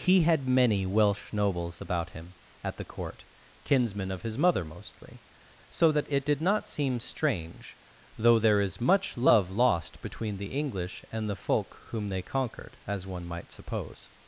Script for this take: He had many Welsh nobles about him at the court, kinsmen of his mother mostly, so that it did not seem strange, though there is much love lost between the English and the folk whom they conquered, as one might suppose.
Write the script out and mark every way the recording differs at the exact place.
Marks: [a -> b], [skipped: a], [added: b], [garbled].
He had many Welsh nobles about him at the court, kinsmen of his mother mostly, so that it did not seem strange, though there is much love lost between the English and the folk whom they conquered, as one might suppose.